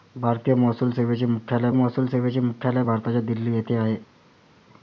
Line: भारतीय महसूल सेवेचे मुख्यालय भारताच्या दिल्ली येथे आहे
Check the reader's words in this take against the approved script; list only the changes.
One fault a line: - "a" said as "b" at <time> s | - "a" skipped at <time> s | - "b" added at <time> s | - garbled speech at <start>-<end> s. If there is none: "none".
- "महसूल सेवेचे मुख्यालय" added at 1.7 s